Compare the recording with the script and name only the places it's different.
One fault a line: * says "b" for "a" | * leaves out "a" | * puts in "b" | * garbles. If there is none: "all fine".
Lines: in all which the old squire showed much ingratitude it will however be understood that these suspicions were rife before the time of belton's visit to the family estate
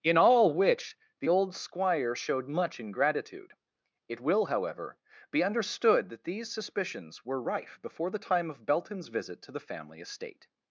all fine